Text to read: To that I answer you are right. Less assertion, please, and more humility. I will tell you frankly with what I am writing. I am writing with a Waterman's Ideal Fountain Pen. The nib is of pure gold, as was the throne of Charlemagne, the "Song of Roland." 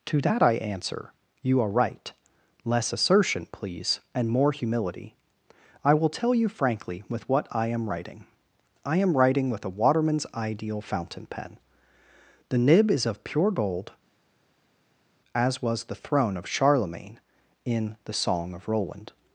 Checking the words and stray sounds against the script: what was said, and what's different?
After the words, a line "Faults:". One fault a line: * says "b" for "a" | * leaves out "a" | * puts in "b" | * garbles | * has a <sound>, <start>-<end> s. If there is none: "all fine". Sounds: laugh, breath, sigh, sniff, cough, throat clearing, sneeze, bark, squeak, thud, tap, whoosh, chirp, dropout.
To that I answer you are right. Less assertion, please, and more humility. I will tell you frankly with what I am writing. I am writing with a Waterman's Ideal Fountain Pen. The nib is of pure gold, as was the throne of Charlemagne, in the "Song of Roland."
Faults:
* puts in "in"